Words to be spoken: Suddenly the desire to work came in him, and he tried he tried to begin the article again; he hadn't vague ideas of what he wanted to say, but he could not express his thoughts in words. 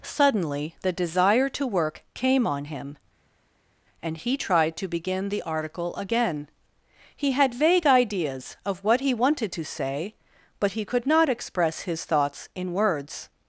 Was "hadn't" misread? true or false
true